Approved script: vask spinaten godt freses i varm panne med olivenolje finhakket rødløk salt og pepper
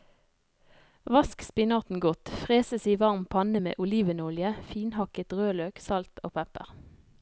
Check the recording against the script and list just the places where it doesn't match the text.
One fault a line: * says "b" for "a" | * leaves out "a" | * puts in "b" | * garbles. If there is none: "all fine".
all fine